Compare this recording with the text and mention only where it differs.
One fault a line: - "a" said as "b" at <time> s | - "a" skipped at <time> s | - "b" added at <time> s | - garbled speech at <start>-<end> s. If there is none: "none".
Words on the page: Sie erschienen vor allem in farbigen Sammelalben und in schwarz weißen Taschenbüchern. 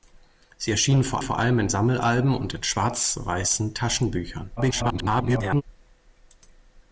- "vor" added at 1.2 s
- "farbigen" skipped at 1.7 s
- garbled speech at 4.6-5.6 s